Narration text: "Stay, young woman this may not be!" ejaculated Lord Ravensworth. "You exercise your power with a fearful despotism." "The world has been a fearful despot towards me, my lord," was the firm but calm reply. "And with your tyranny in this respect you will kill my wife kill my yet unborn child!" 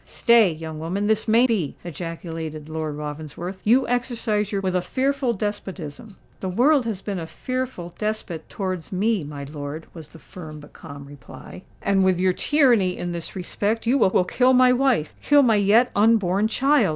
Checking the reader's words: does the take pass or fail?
fail